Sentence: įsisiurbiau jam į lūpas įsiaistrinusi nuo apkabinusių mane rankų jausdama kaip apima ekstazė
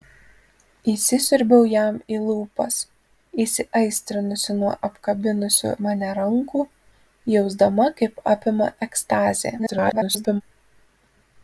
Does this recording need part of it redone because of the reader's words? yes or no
yes